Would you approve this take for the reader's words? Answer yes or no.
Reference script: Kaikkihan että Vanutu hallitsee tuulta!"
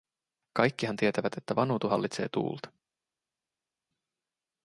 no